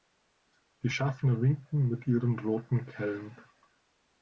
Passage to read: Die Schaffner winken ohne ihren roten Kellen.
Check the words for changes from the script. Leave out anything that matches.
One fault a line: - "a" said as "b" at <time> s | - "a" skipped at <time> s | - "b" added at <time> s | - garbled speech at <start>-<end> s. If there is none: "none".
- "ohne" said as "mit" at 1.9 s